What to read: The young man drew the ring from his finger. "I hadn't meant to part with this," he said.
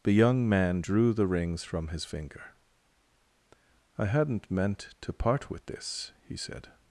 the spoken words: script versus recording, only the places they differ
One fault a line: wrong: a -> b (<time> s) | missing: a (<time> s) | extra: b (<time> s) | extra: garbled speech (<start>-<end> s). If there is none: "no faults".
wrong: ring -> rings (1.3 s)